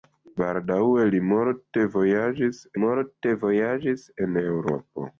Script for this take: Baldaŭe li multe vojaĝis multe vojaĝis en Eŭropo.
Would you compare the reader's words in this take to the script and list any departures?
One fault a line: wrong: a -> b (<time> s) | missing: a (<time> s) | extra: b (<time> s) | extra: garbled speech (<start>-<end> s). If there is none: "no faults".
no faults